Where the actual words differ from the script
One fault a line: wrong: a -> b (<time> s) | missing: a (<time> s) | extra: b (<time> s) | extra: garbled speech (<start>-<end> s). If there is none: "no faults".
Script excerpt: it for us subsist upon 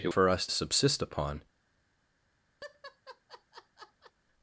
no faults